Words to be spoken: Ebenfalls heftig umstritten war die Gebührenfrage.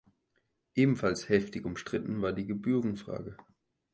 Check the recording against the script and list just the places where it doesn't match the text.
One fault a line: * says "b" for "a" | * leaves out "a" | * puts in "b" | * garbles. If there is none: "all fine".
all fine